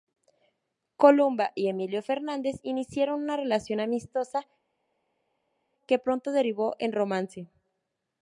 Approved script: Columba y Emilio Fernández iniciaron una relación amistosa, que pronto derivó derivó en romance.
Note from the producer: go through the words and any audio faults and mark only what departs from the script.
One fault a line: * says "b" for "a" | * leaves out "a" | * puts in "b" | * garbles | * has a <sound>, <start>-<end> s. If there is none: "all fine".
* leaves out "derivó"